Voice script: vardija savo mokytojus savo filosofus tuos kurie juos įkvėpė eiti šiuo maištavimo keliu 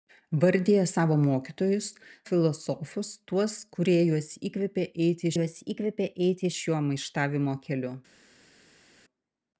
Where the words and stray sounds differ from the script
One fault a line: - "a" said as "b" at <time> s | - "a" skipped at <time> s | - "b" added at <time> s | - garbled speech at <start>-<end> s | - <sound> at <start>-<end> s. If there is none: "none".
- "savo" skipped at 1.9 s
- "juos įkvėpė eiti" added at 5.4 s